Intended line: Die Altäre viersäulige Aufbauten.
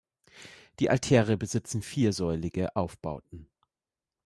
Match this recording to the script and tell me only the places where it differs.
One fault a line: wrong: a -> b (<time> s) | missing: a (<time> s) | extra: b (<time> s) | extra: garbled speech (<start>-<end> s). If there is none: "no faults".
extra: besitzen (1.4 s)